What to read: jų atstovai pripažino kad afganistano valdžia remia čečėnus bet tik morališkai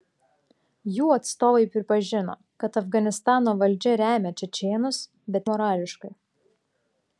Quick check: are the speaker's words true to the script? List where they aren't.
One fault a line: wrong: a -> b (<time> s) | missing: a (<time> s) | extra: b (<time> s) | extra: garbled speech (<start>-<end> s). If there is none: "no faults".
missing: tik (5.5 s)